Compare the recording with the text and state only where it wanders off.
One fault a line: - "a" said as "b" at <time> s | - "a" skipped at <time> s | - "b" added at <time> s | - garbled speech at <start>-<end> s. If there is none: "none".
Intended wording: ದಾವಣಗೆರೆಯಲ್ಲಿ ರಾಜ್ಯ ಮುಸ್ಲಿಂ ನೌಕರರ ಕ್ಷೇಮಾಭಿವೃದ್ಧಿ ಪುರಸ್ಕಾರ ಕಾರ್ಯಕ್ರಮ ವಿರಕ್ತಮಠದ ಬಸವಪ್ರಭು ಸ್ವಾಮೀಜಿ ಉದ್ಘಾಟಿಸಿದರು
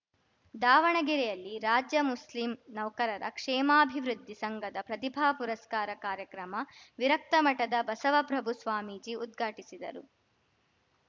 - "ಸಂಘದ ಪ್ರತಿಭಾ" added at 4.3 s